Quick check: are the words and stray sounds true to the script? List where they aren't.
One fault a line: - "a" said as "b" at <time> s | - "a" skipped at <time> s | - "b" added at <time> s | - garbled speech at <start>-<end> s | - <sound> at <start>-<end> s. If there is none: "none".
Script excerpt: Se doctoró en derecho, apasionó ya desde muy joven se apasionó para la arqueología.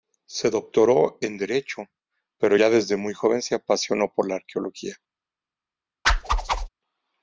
- "apasionó" said as "pero" at 2.4 s
- "para" said as "por" at 4.1 s
- whoosh at 6.0-6.7 s